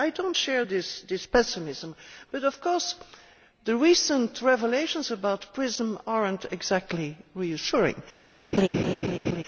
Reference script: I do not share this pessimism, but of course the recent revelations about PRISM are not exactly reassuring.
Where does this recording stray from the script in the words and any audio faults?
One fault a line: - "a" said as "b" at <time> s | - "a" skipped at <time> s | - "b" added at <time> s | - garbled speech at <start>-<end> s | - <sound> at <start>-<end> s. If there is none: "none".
- laugh at 8.5-9.4 s